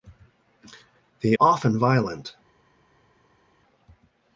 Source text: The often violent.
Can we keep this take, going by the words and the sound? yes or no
yes